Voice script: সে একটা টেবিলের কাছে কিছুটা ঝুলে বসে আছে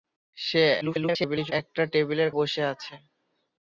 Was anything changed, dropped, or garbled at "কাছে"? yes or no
yes